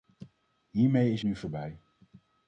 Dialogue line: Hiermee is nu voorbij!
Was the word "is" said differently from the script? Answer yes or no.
no